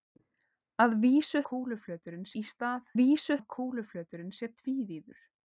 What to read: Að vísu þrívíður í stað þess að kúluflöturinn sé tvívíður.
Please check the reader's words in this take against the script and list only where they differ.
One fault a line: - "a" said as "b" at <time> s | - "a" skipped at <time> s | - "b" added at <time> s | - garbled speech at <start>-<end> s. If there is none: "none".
- "þrívíður" said as "kúluflöturinn" at 1.5 s
- "þess" said as "vísu" at 3.0 s